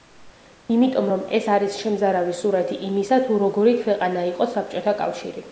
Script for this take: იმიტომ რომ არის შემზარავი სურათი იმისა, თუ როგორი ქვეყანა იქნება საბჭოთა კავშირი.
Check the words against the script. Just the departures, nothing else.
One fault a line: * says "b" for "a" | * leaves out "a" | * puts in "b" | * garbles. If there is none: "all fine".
* puts in "ეს"
* says "იყო" for "იქნება"